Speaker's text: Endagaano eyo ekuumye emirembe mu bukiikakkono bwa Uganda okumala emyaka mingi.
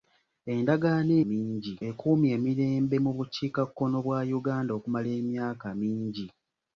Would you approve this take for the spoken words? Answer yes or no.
no